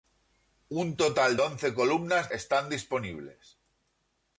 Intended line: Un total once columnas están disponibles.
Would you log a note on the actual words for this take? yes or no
no